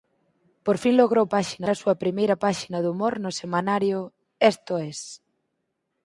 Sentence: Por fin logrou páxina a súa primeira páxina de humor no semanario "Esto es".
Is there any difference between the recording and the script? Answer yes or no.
no